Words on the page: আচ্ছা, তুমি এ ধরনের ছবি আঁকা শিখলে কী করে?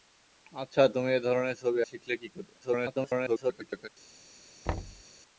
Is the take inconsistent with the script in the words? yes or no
yes